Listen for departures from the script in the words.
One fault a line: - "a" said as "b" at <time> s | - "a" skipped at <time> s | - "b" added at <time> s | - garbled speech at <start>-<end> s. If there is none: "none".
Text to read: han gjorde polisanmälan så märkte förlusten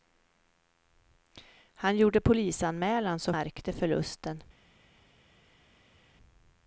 none